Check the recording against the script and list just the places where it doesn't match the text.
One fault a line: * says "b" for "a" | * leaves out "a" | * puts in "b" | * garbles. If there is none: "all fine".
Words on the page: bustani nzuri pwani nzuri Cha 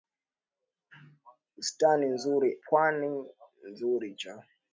all fine